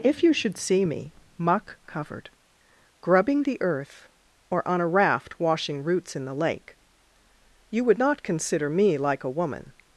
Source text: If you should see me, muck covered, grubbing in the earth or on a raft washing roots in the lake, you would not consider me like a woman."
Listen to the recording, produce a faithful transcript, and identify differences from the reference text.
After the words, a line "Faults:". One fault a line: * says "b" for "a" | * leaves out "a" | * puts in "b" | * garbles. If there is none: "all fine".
If you should see me, muck covered, grubbing the earth or on a raft washing roots in the lake, you would not consider me like a woman."
Faults:
* leaves out "in"